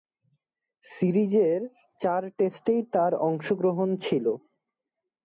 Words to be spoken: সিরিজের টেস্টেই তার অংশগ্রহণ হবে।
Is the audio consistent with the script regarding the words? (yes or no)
no